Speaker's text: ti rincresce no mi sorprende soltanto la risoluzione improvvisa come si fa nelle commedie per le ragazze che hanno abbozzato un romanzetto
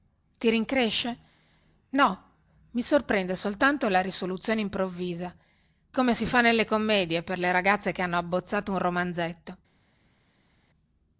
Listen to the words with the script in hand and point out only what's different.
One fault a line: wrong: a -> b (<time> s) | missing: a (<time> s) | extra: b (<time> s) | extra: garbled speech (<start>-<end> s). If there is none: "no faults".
no faults